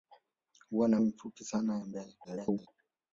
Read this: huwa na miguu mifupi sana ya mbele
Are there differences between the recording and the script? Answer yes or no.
yes